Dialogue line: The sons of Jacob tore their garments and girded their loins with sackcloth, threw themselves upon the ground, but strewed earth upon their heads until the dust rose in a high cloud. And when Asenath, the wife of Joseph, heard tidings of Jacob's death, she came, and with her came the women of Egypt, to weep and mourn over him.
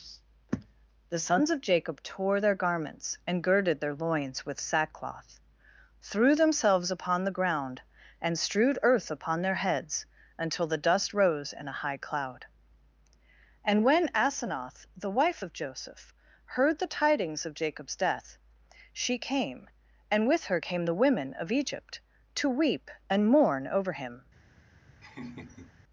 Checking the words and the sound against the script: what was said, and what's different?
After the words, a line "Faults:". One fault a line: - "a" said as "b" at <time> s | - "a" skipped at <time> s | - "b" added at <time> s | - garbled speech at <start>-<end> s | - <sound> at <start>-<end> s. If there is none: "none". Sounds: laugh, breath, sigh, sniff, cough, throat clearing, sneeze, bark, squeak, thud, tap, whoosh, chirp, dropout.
The sons of Jacob tore their garments and girded their loins with sackcloth, threw themselves upon the ground, and strewed earth upon their heads until the dust rose in a high cloud. And when Asenath, the wife of Joseph, heard the tidings of Jacob's death, she came, and with her came the women of Egypt, to weep and mourn over him.
Faults:
- "but" said as "and" at 8.2 s
- "the" added at 16.8 s
- laugh at 25.0-25.7 s